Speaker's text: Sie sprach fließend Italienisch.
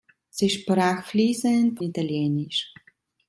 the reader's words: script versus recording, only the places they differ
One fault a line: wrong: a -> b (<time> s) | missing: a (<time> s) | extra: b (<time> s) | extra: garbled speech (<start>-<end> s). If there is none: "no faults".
no faults